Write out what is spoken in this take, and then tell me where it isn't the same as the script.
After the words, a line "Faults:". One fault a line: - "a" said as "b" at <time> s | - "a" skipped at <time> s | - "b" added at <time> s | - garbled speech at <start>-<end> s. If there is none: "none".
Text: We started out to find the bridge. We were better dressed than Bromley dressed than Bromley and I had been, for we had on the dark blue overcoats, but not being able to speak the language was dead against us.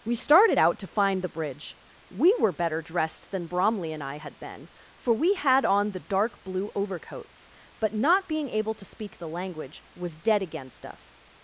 We started out to find the bridge. We were better dressed than Bromley and I had been, for we had on the dark blue overcoats, but not being able to speak the language was dead against us.
Faults:
- "dressed than Bromley" skipped at 3.9 s